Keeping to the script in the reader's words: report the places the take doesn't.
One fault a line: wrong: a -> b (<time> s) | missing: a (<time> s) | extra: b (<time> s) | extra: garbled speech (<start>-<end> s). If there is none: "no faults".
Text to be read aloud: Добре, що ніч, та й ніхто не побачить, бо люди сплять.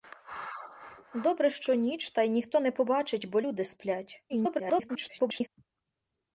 extra: garbled speech (4.3-5.5 s)